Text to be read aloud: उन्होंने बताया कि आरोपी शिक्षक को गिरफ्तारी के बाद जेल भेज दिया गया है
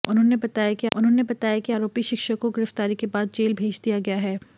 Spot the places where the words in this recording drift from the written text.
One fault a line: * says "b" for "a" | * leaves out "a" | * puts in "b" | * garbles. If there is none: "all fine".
* puts in "उन्होंने बताया कि"